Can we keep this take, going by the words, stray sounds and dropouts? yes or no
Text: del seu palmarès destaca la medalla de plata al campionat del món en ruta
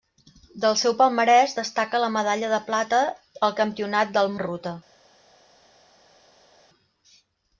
no